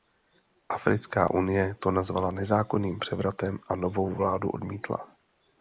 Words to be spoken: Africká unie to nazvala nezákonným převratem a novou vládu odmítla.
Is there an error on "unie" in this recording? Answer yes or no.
no